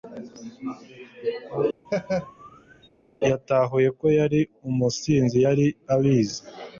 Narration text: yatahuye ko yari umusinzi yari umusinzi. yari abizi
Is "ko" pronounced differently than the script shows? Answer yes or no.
no